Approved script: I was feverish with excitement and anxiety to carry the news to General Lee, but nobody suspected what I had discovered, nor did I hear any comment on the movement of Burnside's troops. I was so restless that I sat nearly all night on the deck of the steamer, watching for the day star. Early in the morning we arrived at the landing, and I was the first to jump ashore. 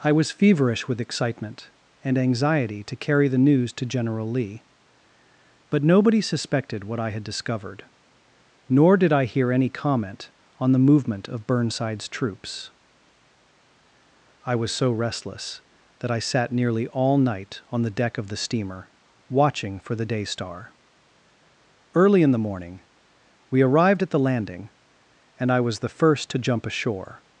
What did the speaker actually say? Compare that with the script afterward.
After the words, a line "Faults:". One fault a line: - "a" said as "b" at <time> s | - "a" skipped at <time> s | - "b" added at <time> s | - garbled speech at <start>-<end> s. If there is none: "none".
I was feverish with excitement and anxiety to carry the news to General Lee, but nobody suspected what I had discovered, nor did I hear any comment on the movement of Burnside's troops. I was so restless that I sat nearly all night on the deck of the steamer, watching for the day star. Early in the morning we arrived at the landing, and I was the first to jump ashore.
Faults:
none